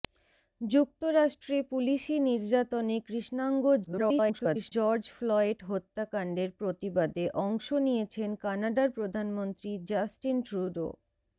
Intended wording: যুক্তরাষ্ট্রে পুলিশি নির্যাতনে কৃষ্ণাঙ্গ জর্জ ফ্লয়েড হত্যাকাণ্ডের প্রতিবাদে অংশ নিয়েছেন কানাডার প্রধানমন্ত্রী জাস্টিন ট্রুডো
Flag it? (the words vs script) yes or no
yes